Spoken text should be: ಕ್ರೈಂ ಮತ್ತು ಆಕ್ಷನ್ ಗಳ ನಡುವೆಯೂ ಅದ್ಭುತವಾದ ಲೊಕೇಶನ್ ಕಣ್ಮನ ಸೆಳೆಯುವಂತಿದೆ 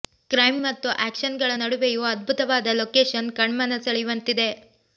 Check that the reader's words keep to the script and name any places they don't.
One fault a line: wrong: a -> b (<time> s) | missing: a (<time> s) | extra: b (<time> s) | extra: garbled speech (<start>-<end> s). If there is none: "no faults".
no faults